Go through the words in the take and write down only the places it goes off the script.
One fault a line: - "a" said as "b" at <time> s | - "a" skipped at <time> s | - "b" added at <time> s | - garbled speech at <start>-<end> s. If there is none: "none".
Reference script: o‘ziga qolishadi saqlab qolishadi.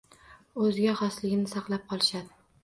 - "qolishadi" said as "xosligini" at 1.0 s